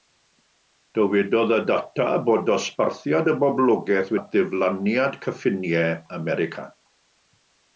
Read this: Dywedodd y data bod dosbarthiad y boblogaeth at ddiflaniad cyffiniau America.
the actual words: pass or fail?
pass